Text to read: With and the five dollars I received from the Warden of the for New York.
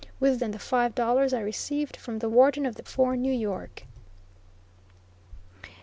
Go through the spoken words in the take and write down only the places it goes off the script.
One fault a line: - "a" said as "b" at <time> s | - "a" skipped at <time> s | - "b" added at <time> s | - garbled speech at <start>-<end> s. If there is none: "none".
none